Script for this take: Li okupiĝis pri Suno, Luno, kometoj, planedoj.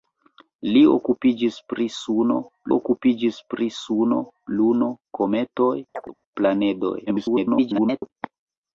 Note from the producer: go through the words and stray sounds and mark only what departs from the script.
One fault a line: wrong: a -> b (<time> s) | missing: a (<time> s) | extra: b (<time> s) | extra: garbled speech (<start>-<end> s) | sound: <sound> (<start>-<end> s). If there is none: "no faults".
extra: okupiĝis pri Suno (2.7 s)
sound: chirp (5.9-6.1 s)
extra: garbled speech (7.1-8.1 s)